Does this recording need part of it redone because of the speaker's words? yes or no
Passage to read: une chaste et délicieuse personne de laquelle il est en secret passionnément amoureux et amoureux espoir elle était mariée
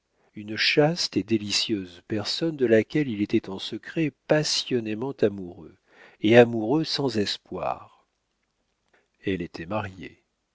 yes